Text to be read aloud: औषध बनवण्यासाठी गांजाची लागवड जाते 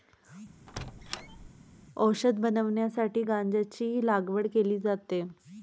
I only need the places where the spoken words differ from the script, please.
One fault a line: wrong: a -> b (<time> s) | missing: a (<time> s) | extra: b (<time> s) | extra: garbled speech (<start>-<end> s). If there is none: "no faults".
extra: केली (4.5 s)